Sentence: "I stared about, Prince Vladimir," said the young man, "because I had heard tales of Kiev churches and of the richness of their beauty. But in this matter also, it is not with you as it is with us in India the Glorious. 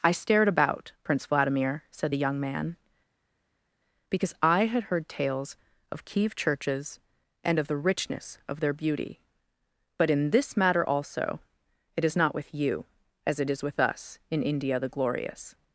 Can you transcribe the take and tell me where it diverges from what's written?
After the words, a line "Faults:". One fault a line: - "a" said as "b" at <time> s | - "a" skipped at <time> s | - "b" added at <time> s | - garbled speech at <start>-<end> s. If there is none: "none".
"I stared about, Prince Vladimir," said the young man, "because I had heard tales of Kiev churches and of the richness of their beauty. But in this matter also, it is not with you as it is with us in India the Glorious.
Faults:
none